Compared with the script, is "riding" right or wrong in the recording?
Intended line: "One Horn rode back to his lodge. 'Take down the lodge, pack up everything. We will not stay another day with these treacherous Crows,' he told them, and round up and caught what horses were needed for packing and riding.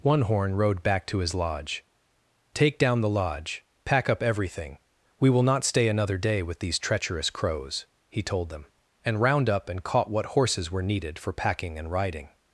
right